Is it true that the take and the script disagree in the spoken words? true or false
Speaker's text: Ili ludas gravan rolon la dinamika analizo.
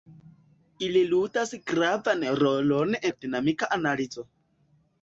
false